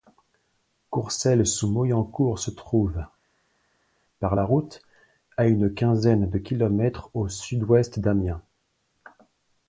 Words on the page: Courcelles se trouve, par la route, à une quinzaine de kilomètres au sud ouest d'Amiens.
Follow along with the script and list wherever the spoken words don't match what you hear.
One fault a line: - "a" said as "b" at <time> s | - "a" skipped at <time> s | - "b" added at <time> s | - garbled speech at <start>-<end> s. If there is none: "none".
- "sous Moyencourt" added at 1.4 s